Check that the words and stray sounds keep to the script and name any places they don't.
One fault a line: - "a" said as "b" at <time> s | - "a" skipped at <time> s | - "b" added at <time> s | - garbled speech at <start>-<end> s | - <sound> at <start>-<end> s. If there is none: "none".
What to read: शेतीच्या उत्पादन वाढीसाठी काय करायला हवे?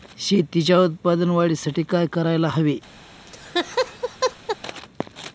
- laugh at 3.3-4.6 s